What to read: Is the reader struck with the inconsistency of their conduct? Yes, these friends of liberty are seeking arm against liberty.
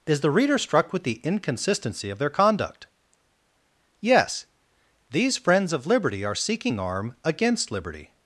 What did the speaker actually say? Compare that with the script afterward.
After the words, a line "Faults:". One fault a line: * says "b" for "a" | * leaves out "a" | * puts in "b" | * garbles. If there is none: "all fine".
Is the reader struck with the inconsistency of their conduct? Yes, these friends of liberty are seeking arm against liberty.
Faults:
all fine